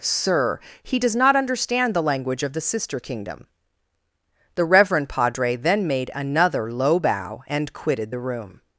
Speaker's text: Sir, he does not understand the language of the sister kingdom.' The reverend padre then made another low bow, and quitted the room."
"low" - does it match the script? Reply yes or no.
yes